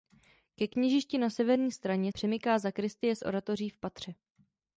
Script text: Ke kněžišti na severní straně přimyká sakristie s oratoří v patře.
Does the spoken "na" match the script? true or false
true